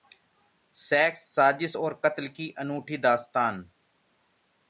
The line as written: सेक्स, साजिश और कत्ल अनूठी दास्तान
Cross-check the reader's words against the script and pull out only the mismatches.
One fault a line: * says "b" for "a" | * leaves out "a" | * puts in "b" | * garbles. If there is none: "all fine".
* puts in "की"